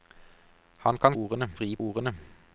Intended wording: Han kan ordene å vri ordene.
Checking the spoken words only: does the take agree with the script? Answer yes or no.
yes